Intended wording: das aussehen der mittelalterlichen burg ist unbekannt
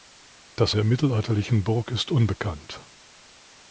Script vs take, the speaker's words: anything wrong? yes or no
yes